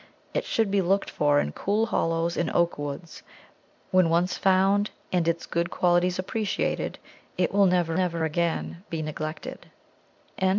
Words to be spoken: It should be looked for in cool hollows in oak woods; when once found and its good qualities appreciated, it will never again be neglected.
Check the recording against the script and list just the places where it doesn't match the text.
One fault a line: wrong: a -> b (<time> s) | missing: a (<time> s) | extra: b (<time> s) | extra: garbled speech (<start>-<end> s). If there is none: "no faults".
extra: never (7.9 s)